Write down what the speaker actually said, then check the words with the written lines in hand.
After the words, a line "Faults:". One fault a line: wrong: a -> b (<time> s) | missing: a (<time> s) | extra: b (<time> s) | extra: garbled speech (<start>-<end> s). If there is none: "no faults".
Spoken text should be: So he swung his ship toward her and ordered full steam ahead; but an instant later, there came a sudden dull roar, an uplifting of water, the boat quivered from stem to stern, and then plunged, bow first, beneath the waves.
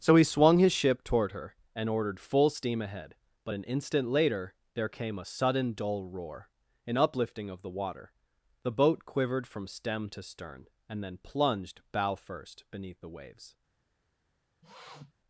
So he swung his ship toward her and ordered full steam ahead; but an instant later, there came a sudden dull roar, an uplifting of the water, the boat quivered from stem to stern, and then plunged, bow first, beneath the waves.
Faults:
extra: the (7.6 s)